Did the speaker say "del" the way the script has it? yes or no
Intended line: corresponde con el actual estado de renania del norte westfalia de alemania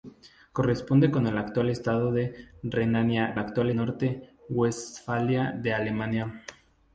no